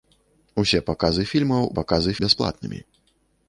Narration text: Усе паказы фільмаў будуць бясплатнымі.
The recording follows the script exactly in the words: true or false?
false